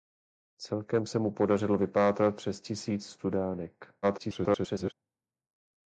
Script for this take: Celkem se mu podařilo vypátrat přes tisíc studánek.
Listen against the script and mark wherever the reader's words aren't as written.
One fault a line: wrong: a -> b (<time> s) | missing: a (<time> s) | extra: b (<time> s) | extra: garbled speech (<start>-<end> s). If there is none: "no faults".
extra: garbled speech (4.0-4.9 s)